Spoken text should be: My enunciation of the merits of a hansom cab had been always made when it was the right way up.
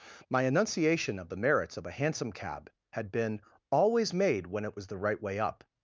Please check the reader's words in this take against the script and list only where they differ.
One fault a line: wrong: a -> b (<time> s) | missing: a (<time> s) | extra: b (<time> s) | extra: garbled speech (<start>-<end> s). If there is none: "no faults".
no faults